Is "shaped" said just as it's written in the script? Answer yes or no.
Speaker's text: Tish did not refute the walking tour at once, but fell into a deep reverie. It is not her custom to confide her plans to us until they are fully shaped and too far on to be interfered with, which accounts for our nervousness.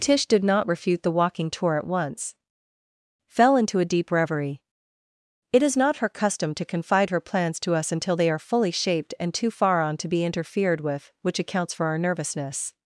yes